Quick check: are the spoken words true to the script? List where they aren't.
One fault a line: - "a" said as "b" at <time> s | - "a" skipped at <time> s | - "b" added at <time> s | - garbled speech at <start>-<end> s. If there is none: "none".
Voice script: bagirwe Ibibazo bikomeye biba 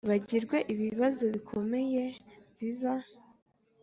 none